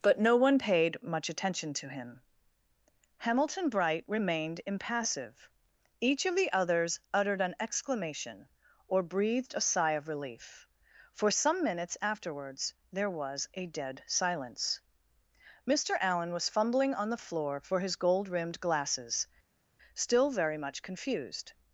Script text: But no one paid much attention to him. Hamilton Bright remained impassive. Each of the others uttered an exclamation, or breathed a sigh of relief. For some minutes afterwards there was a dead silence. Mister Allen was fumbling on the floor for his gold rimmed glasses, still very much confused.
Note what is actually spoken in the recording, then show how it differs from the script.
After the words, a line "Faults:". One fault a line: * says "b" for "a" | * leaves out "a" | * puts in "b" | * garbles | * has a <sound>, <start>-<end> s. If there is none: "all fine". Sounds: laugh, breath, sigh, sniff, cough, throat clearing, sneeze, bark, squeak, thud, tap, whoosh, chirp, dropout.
But no one paid much attention to him. Hamilton Bright remained impassive. Each of the others uttered an exclamation, or breathed a sigh of relief. For some minutes afterwards there was a dead silence. Mister Allen was fumbling on the floor for his gold rimmed glasses, still very much confused.
Faults:
all fine